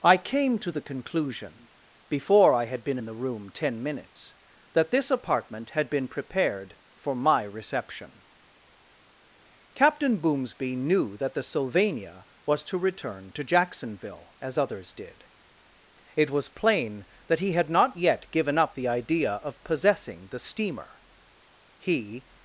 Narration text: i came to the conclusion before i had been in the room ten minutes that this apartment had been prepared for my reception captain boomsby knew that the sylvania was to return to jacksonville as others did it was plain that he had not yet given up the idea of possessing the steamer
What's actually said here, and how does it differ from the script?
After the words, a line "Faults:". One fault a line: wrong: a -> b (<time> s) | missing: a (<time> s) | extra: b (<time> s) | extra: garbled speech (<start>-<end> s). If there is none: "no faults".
i came to the conclusion before i had been in the room ten minutes that this apartment had been prepared for my reception captain boomsby knew that the sylvania was to return to jacksonville as others did it was plain that he had not yet given up the idea of possessing the steamer he
Faults:
extra: he (21.8 s)